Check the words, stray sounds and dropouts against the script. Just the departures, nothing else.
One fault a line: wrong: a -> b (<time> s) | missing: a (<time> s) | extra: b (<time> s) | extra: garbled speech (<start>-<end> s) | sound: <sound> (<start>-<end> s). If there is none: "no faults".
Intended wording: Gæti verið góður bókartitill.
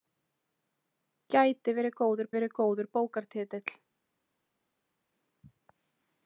extra: verið góður (2.4 s)